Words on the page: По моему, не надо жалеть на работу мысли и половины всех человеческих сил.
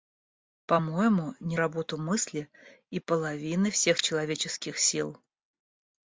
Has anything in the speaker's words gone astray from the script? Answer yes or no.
yes